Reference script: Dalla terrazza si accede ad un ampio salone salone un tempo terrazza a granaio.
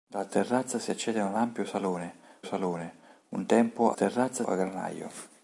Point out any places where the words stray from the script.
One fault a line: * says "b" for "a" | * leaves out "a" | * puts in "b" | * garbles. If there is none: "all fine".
all fine